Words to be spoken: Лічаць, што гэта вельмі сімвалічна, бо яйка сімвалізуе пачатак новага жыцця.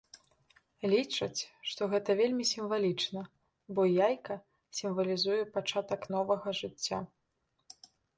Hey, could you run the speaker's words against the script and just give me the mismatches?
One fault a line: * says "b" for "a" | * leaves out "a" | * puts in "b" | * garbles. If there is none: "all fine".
all fine